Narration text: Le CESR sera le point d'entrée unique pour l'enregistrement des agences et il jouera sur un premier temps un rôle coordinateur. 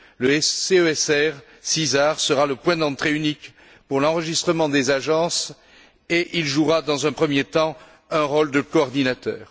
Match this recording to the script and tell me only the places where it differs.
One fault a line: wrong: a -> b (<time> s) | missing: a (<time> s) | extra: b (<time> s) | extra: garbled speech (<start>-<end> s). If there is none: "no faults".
wrong: sur -> dans (6.8 s)
extra: de (8.5 s)